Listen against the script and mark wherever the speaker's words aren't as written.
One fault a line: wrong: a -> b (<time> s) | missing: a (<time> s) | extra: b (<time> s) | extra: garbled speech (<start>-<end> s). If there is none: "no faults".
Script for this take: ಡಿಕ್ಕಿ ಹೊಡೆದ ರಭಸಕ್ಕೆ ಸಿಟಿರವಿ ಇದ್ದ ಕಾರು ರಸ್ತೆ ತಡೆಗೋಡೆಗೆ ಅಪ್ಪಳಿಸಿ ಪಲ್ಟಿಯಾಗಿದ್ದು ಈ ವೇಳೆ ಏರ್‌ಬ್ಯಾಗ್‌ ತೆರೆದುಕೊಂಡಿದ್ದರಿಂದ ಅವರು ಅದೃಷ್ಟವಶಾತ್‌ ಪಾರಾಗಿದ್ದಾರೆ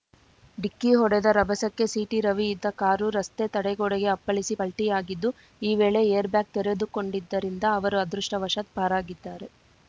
no faults